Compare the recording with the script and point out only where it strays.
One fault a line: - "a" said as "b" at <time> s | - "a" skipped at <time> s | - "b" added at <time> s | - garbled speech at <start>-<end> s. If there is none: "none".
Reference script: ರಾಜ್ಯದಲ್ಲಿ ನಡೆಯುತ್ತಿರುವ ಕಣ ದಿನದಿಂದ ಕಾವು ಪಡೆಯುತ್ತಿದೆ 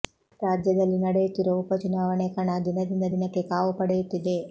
- "ಉಪ ಚುನಾವಣೆ" added at 1.6 s
- "ದಿನಕ್ಕೆ" added at 3.1 s